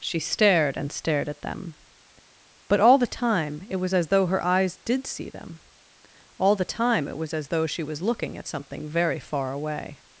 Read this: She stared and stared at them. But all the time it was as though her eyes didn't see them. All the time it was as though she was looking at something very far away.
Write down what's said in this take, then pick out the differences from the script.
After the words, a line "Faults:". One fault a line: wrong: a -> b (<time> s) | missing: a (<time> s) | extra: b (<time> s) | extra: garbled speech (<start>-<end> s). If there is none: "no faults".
She stared and stared at them. But all the time it was as though her eyes did see them. All the time it was as though she was looking at something very far away.
Faults:
wrong: didn't -> did (4.8 s)